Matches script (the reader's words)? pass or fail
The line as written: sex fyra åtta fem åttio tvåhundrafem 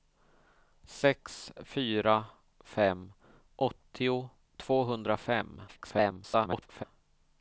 fail